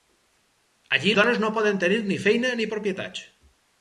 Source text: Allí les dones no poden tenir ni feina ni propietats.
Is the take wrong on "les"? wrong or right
wrong